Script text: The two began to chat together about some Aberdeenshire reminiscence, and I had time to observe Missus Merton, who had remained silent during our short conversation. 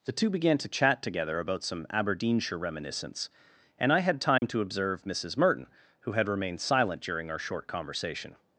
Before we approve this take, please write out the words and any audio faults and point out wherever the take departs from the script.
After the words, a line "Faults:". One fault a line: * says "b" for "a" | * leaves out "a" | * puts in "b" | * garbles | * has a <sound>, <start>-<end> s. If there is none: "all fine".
The two began to chat together about some Aberdeenshire reminiscence, and I had time to observe Missus Merton, who had remained silent during our short conversation.
Faults:
* has a dropout, 4.4-4.4 s